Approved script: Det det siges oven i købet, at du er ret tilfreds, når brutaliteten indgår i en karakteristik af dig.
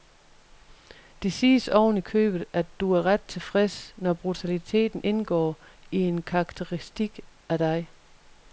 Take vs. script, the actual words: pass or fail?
fail